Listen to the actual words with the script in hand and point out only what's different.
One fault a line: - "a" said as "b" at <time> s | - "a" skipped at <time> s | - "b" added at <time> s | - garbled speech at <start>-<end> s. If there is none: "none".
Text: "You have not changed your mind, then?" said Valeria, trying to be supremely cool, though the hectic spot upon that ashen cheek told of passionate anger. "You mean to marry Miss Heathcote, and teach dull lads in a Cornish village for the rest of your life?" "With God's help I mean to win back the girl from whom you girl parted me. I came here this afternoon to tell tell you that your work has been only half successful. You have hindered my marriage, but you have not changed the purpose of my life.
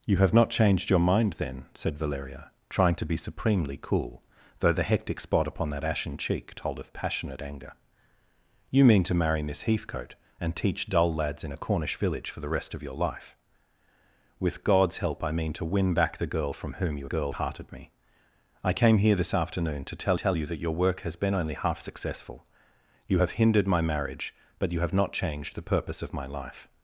none